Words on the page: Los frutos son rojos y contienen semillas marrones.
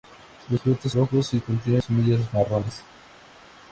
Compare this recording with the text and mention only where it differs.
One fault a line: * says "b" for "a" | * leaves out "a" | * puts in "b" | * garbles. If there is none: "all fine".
* leaves out "son"